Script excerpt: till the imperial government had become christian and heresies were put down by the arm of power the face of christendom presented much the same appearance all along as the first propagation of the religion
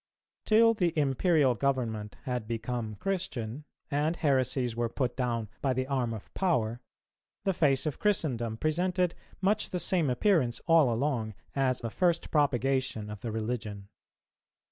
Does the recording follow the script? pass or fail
pass